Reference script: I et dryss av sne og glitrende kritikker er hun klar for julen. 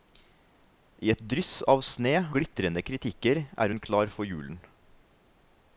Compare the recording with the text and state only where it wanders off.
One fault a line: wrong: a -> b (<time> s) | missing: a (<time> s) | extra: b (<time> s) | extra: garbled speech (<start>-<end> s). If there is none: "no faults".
missing: og (2.1 s)